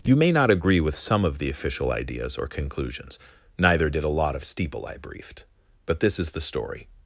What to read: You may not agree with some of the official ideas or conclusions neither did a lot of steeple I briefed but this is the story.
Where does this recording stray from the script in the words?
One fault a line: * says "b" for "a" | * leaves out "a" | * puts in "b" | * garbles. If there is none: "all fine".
all fine